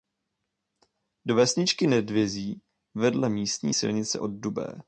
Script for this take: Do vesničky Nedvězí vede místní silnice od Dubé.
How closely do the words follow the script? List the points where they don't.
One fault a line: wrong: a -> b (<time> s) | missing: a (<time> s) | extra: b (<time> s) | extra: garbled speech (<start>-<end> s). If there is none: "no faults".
no faults